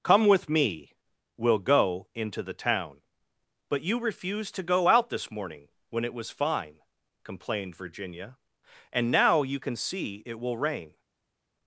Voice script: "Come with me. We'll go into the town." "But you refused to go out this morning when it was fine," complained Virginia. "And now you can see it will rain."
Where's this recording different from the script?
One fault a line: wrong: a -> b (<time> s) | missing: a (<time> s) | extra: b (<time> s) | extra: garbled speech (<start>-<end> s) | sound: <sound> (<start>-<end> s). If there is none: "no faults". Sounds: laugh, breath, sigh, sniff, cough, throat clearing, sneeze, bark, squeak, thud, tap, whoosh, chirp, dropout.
no faults